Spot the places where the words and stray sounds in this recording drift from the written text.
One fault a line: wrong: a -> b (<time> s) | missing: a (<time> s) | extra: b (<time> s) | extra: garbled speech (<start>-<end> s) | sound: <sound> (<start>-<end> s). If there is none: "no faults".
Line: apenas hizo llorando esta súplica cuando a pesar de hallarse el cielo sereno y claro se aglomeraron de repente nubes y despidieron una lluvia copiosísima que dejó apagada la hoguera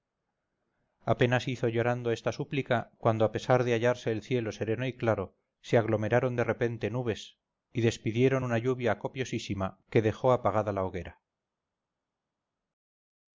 no faults